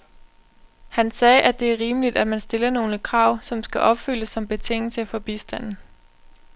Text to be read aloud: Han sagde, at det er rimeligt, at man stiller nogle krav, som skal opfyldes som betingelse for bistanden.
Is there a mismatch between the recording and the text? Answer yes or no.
no